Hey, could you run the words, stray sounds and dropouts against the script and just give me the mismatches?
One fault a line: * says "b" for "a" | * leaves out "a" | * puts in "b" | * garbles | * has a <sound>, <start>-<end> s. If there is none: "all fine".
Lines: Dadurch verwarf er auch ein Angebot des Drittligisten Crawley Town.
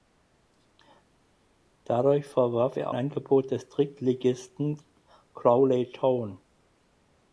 * leaves out "auch ein"